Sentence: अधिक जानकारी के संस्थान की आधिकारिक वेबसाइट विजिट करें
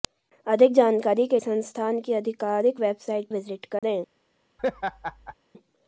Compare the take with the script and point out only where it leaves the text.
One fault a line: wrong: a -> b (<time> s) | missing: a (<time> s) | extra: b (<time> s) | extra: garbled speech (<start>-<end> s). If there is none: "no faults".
no faults